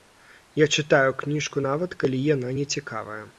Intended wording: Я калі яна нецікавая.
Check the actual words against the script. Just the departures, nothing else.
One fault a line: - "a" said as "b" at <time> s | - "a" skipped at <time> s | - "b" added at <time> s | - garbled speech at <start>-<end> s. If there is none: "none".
- "чытаю кніжку нават" added at 0.8 s